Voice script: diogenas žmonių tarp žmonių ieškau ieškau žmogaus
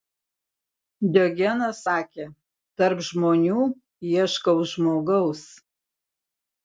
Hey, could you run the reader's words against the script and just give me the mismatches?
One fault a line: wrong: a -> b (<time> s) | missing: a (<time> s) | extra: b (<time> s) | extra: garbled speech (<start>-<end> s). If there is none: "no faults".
wrong: žmonių -> sakė (1.8 s)
missing: ieškau (4.6 s)